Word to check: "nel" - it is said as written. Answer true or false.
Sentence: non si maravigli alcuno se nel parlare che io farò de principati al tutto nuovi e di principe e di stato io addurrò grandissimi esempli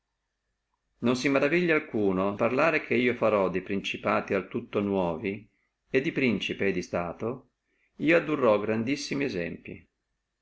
false